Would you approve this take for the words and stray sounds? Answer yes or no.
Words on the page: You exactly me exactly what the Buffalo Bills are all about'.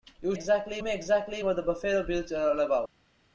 yes